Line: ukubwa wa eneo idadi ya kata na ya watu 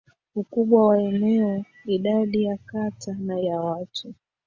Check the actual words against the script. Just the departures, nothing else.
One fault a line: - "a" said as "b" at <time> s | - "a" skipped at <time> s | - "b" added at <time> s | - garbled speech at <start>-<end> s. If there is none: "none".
none